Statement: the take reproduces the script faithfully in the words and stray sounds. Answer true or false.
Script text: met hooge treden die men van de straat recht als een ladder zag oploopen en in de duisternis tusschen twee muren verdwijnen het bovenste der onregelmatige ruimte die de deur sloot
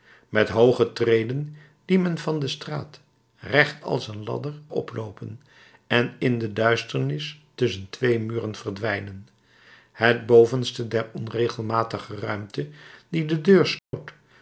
false